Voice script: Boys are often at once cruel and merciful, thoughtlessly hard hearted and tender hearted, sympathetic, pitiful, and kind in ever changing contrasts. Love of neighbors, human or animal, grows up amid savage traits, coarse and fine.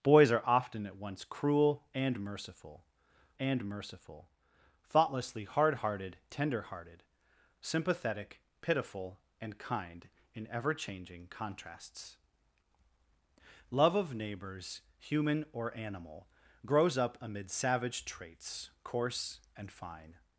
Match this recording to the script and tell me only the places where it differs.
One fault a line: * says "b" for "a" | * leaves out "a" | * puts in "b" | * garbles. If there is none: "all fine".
* puts in "and merciful"
* leaves out "and"